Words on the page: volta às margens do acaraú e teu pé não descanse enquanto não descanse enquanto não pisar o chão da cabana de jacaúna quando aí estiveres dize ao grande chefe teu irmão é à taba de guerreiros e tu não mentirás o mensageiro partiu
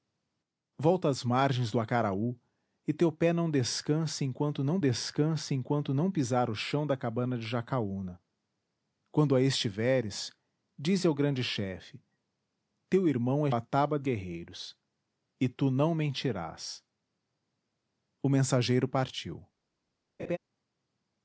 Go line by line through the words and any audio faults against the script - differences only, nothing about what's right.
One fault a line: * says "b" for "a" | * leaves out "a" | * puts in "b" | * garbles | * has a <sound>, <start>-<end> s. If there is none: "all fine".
* has a laugh, 20.2-20.4 s